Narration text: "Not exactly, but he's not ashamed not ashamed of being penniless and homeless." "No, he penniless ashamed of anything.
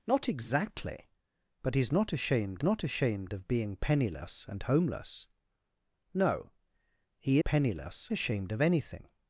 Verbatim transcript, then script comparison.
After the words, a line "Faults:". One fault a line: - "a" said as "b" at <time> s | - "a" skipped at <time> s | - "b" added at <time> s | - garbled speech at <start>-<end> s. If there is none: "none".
"Not exactly, but he's not ashamed not ashamed of being penniless and homeless." "No, he penniless ashamed of anything.
Faults:
none